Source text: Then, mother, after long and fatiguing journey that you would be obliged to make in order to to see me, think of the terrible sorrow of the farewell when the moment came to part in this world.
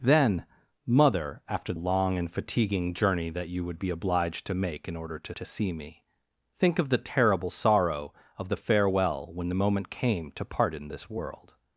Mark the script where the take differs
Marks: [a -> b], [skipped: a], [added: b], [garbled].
Then, mother, after long and fatiguing journey that you would be obliged to make in order to to see me, think of the terrible sorrow of the farewell when the moment came to part in this world.